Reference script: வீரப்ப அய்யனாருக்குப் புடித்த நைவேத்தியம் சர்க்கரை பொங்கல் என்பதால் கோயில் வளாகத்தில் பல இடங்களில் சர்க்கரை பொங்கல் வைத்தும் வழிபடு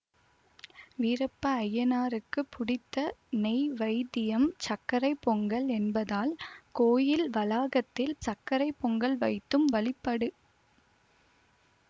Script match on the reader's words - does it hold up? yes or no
no